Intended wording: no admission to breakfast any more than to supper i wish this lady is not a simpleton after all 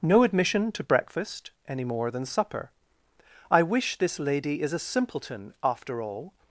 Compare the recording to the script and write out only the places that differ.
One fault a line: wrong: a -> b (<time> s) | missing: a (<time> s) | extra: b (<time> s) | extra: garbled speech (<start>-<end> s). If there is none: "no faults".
missing: to (2.2 s)
missing: not (4.7 s)